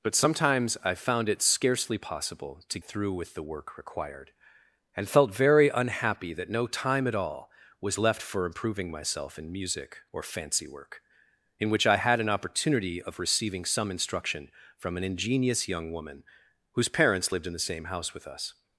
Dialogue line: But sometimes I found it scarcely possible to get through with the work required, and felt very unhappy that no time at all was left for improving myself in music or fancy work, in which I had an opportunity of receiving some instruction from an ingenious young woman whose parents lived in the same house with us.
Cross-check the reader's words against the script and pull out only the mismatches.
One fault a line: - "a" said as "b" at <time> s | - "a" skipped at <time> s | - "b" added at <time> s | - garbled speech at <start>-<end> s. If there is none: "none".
- "get" skipped at 2.8 s